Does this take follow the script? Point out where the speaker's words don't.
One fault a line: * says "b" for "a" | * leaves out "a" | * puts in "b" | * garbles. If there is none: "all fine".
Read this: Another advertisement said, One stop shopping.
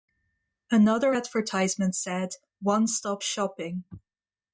all fine